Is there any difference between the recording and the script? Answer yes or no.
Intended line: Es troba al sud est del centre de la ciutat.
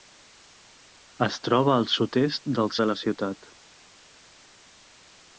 yes